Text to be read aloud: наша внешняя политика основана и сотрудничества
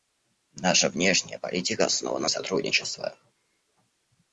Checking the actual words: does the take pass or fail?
pass